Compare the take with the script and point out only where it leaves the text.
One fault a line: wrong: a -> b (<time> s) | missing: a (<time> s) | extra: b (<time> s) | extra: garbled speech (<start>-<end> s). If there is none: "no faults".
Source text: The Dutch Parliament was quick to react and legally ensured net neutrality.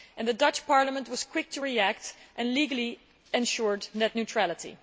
no faults